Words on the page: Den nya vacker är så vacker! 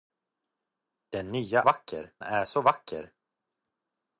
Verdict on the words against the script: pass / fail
pass